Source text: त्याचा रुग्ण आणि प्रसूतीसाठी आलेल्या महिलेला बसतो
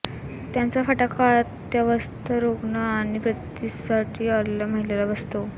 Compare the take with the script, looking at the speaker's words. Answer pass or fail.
fail